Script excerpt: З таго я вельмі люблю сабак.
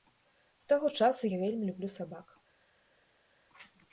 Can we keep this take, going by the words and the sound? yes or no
no